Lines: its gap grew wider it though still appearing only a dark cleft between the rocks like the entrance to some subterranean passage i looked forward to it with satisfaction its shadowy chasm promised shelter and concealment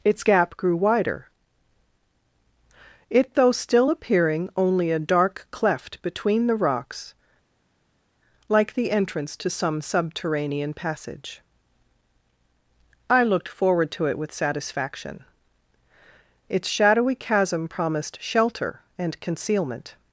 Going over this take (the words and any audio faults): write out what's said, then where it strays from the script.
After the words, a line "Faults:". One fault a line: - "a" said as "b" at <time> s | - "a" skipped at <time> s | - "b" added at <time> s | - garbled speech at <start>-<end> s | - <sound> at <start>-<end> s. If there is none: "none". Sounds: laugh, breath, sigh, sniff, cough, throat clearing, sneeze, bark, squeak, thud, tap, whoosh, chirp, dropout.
its gap grew wider it though still appearing only a dark cleft between the rocks like the entrance to some subterranean passage i looked forward to it with satisfaction its shadowy chasm promised shelter and concealment
Faults:
none